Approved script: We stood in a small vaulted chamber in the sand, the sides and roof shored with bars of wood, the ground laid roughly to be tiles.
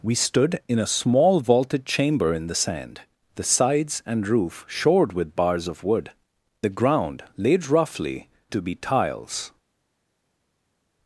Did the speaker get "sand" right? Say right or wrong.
right